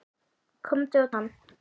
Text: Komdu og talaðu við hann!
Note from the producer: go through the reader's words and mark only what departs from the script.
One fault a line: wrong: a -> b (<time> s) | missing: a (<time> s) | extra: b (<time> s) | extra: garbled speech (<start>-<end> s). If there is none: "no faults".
missing: talaðu við (1.1 s)